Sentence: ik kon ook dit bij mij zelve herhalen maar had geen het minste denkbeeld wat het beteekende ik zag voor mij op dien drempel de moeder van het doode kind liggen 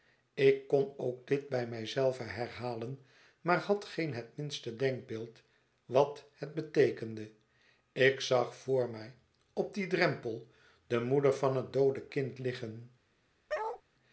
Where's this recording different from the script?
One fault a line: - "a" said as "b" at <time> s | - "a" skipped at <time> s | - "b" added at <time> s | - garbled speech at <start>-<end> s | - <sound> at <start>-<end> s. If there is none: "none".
- bark at 13.5-13.8 s